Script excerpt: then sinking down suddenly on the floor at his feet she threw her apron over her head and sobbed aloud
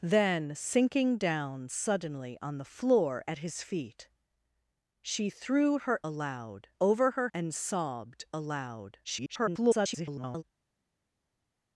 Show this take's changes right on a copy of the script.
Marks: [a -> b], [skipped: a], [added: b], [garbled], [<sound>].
then sinking down suddenly on the floor at his feet she threw her [apron -> aloud] over her [skipped: head] and sobbed aloud [garbled]